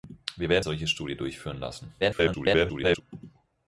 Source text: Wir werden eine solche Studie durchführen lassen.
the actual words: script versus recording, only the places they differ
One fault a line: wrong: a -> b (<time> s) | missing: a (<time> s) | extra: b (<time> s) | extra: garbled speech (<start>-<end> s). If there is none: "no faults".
missing: eine (0.7 s)
extra: garbled speech (2.0-3.0 s)